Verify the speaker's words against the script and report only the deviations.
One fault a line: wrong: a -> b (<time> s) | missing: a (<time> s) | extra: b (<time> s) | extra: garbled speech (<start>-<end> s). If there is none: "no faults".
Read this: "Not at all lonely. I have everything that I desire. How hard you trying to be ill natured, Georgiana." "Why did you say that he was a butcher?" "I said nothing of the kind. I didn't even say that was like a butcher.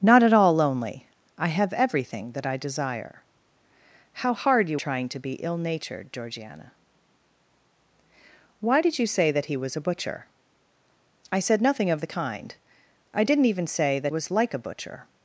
no faults